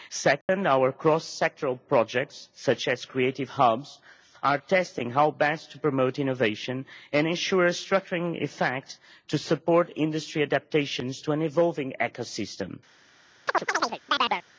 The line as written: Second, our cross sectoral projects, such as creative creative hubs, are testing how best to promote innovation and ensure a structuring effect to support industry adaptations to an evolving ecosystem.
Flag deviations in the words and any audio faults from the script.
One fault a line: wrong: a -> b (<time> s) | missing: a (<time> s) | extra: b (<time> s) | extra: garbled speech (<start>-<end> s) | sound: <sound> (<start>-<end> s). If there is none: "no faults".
sound: dropout (0.4-0.5 s)
missing: creative (3.5 s)
sound: chirp (13.5-14.4 s)